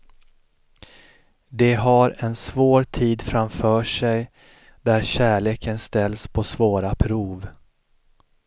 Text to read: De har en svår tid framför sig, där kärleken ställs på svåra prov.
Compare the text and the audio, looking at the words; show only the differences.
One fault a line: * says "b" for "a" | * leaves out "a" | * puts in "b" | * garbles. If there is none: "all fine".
all fine